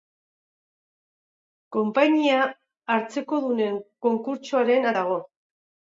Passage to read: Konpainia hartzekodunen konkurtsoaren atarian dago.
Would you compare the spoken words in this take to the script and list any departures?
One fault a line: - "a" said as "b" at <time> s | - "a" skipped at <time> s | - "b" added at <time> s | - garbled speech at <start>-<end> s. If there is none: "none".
- "atarian" skipped at 4.9 s